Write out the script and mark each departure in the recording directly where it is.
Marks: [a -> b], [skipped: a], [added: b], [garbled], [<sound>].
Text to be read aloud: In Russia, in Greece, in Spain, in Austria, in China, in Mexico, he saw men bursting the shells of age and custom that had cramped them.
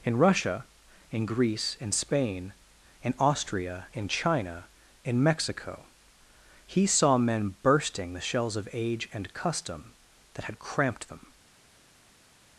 In Russia, in Greece, in Spain, in Austria, in China, in Mexico, he saw men bursting the shells of age and custom that had cramped them.